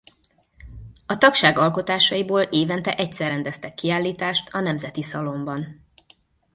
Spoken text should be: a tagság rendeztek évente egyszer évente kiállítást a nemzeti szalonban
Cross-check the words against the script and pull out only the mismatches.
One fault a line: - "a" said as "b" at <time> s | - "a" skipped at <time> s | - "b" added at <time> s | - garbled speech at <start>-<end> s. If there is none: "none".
- "rendeztek" said as "alkotásaiból" at 1.6 s
- "évente" said as "rendeztek" at 3.3 s